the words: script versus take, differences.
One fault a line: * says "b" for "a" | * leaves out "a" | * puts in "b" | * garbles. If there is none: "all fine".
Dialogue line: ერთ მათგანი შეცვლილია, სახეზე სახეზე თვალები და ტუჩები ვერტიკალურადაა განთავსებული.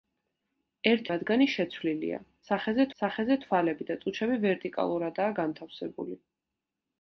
all fine